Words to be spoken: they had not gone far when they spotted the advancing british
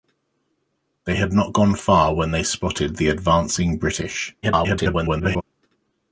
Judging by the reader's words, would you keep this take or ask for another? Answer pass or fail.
fail